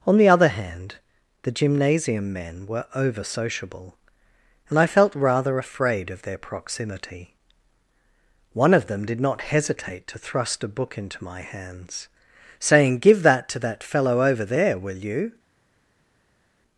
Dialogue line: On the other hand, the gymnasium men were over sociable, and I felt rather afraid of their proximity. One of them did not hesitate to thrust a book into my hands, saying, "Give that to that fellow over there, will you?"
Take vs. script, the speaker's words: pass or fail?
pass